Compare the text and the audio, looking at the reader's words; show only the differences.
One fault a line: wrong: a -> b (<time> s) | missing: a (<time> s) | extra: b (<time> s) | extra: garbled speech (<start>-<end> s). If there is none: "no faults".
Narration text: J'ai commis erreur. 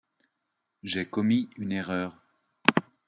extra: une (1.6 s)